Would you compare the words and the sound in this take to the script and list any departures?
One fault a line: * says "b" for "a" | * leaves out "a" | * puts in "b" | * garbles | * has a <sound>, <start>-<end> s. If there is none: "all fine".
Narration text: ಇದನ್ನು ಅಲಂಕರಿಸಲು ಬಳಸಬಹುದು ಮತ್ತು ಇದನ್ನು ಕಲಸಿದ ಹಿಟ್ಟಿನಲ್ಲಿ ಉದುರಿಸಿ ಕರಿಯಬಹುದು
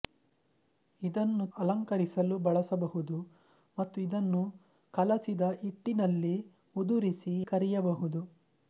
all fine